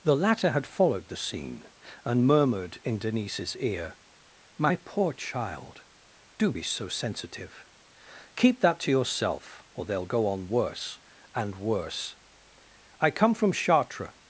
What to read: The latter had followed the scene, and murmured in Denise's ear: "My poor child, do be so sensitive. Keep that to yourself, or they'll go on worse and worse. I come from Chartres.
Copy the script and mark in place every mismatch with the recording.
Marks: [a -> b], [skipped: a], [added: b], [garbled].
The latter had followed the scene, and murmured in Denise's ear: "My poor child, do be so sensitive. Keep that to yourself, or they'll go on worse and worse. I come from Chartres.